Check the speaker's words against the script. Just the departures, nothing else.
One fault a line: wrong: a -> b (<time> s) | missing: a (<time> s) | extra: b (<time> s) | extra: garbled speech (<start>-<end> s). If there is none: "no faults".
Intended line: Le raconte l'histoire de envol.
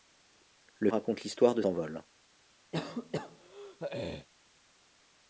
no faults